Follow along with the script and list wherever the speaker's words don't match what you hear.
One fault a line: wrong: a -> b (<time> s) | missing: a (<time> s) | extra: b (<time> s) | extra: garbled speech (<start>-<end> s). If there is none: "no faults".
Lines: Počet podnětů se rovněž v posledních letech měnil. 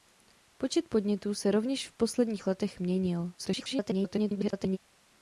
extra: garbled speech (3.4-4.8 s)